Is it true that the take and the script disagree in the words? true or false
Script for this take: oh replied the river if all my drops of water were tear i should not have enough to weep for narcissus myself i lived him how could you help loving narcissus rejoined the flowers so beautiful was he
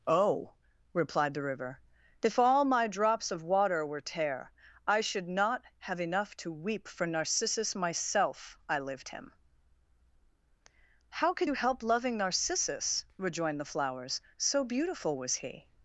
false